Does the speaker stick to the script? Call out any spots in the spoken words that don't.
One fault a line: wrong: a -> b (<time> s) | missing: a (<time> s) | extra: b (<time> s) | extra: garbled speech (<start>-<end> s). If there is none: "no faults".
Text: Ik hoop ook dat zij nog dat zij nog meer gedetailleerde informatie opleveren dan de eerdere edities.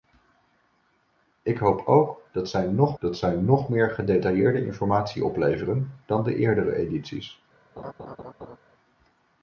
no faults